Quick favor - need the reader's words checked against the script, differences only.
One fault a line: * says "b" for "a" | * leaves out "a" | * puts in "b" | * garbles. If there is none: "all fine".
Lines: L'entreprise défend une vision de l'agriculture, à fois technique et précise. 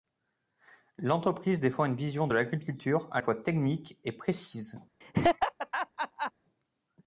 all fine